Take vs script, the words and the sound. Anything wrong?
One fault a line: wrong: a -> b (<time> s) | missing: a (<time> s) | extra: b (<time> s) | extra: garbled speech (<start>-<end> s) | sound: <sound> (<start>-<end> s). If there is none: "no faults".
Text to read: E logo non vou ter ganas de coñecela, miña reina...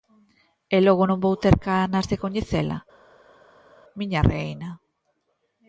no faults